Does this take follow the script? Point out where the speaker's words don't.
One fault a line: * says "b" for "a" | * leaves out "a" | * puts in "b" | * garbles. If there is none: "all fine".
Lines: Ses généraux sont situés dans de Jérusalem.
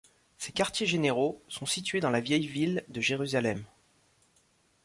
* puts in "quartiers"
* puts in "la Vieille ville"